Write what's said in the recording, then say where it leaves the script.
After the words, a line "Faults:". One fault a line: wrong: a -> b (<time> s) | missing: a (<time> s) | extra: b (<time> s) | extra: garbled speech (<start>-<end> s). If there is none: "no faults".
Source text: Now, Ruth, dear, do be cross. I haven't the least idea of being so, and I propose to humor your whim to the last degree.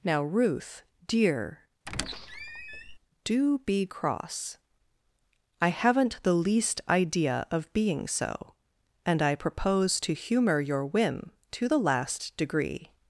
Now, Ruth, dear, do be cross. I haven't the least idea of being so, and I propose to humor your whim to the last degree.
Faults:
no faults